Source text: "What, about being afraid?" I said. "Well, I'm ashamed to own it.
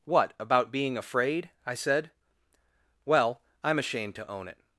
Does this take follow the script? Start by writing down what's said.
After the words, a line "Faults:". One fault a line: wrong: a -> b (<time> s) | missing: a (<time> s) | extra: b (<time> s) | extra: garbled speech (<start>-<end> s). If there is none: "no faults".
"What, about being afraid?" I said. "Well, I'm ashamed to own it.
Faults:
no faults